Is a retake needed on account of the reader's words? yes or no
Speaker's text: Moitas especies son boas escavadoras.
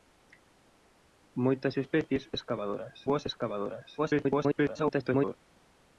yes